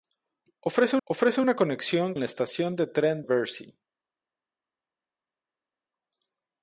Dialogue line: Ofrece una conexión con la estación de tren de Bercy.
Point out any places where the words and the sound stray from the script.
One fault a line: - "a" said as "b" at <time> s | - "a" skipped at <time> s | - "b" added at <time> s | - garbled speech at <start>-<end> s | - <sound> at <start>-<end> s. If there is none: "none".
- "ofrece" added at 1.0 s
- "con" skipped at 2.1 s
- "de" skipped at 3.2 s